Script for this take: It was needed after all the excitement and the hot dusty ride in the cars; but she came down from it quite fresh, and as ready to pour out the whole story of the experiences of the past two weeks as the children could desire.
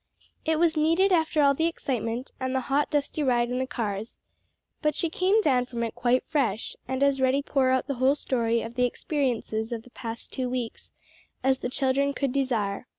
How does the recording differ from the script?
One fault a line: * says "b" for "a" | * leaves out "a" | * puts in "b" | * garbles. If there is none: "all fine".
* leaves out "to"